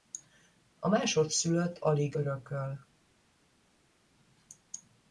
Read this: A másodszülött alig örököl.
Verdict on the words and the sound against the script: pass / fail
pass